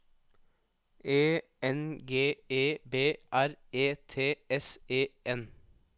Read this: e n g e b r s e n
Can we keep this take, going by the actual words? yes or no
no